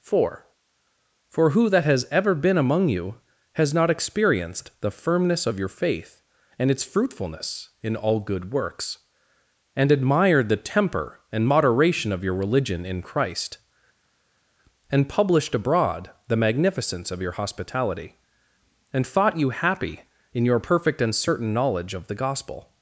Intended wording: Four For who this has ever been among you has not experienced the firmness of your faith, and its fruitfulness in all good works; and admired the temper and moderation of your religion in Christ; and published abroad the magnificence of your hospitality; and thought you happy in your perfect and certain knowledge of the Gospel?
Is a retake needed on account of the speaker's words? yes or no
yes